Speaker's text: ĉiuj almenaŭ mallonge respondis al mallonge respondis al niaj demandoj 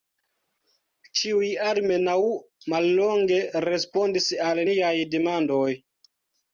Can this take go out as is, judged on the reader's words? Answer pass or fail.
fail